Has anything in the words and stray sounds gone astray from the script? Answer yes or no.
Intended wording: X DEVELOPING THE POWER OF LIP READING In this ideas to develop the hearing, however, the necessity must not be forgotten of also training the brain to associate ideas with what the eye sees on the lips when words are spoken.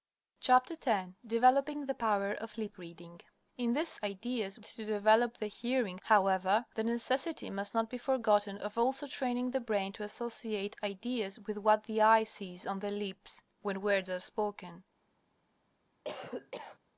yes